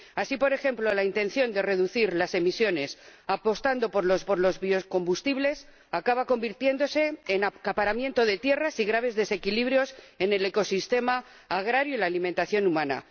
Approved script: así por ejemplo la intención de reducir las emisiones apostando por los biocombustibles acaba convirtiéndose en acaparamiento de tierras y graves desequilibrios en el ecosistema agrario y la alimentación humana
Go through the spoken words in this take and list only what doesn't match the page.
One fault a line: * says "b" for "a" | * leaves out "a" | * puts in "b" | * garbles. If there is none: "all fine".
* puts in "por los"